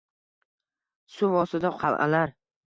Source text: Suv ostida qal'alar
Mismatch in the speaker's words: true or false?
false